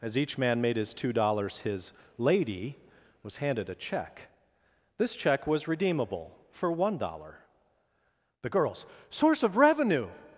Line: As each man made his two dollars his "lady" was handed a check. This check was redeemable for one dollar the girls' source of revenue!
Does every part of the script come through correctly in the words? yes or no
yes